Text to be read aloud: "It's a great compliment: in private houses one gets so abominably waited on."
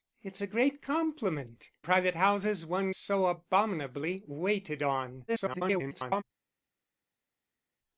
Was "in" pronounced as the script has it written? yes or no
no